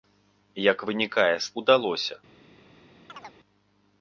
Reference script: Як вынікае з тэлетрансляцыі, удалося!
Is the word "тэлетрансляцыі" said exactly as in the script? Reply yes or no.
no